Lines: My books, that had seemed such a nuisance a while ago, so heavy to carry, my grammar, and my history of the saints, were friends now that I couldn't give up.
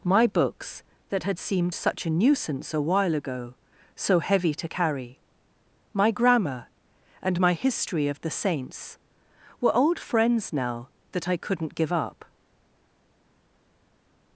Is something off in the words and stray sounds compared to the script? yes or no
yes